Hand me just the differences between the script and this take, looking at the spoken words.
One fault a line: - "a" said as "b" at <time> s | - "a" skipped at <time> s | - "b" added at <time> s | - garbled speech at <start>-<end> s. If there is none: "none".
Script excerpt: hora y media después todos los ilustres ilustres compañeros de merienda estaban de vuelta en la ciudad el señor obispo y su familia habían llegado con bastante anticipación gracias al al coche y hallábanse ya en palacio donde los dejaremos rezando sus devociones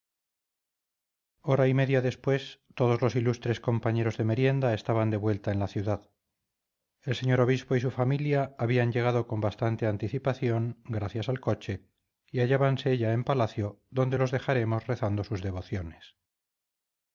- "ilustres" skipped at 3.6 s
- "al" skipped at 11.4 s